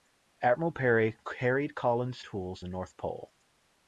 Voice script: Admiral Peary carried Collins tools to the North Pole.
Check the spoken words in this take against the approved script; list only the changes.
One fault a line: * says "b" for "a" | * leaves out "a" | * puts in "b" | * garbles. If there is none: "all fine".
* leaves out "to"